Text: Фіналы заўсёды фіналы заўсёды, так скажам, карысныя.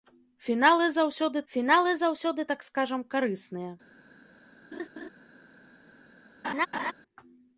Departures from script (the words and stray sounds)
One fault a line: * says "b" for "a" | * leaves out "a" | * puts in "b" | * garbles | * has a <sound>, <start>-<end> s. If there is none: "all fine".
* has a laugh, 4.7-5.1 s
* has a laugh, 6.4-6.9 s